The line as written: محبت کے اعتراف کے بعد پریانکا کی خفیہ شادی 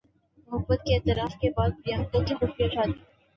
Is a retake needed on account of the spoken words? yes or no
no